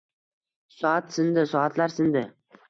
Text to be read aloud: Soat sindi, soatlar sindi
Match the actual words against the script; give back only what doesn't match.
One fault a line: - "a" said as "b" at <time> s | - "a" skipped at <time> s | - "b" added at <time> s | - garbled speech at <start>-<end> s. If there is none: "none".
none